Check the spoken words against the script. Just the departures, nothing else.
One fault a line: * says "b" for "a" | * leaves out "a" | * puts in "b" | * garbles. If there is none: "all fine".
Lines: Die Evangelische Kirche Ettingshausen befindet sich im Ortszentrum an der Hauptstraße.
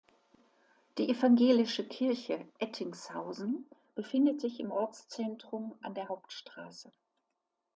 all fine